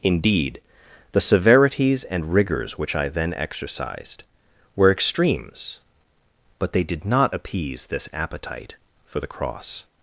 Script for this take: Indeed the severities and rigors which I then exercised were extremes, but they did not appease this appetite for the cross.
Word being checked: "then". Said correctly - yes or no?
yes